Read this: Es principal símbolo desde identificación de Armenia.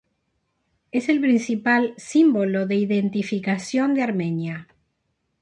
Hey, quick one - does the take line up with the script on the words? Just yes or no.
no